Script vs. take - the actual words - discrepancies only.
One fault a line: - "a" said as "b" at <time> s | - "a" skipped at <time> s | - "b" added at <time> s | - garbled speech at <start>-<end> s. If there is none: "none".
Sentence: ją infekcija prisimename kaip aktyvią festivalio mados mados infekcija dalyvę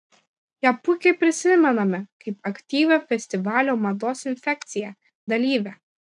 - "infekcija" said as "puikiai" at 0.8 s
- "mados" skipped at 4.3 s